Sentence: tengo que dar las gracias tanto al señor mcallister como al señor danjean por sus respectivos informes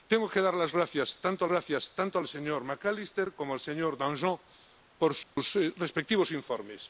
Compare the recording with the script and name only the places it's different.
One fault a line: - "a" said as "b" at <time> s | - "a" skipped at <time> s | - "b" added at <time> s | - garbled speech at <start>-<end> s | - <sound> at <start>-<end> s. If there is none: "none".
- "gracias tanto" added at 1.5 s
- dropout at 5.2-5.4 s